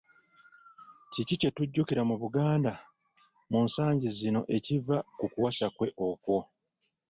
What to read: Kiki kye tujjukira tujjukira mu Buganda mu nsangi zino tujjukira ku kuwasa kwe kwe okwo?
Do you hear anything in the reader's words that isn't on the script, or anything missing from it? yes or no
yes